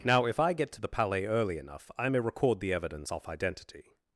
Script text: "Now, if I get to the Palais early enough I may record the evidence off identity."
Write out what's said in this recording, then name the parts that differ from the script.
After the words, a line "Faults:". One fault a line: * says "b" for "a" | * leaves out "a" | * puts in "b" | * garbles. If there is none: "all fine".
"Now, if I get to the Palais early enough I may record the evidence off identity."
Faults:
all fine